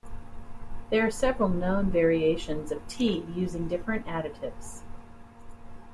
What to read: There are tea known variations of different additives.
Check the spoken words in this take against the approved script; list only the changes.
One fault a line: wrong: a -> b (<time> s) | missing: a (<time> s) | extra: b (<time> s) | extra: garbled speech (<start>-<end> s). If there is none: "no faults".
wrong: tea -> several (1.1 s)
extra: tea using (2.9 s)